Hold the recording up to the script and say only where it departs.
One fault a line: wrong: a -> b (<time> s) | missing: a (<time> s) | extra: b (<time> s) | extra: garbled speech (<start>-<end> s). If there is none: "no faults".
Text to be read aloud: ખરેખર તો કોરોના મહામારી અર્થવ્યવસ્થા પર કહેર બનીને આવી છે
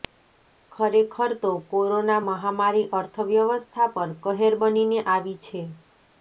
no faults